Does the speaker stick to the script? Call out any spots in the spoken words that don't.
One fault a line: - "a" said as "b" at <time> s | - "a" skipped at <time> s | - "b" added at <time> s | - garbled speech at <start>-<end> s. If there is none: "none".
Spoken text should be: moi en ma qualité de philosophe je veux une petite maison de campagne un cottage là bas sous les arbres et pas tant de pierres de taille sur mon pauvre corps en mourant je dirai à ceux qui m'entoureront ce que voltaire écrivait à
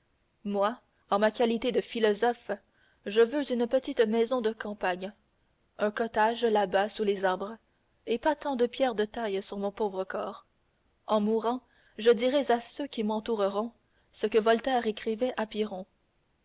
none